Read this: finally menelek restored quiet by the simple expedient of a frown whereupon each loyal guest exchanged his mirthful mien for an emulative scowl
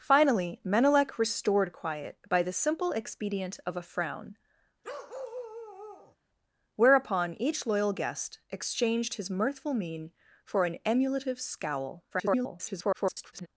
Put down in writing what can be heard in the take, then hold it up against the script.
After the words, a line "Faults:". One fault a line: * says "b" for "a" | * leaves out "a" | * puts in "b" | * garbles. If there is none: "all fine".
finally menelek restored quiet by the simple expedient of a frown whereupon each loyal guest exchanged his mirthful mien for an emulative scowl [garbled]
Faults:
* garbles